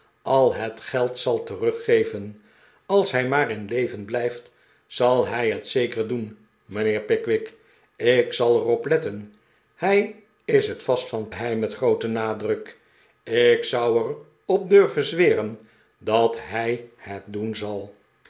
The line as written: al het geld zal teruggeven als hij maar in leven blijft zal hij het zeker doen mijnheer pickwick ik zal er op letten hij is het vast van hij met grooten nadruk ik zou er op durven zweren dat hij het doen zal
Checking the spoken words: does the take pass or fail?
pass